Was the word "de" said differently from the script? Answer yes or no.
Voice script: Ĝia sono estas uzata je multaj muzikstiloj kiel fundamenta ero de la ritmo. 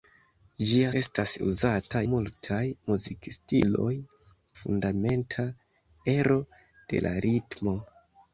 no